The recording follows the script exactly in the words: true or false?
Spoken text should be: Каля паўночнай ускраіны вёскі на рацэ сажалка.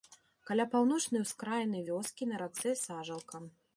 true